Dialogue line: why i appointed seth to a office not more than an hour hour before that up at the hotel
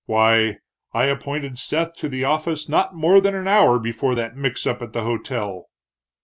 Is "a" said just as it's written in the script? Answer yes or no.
no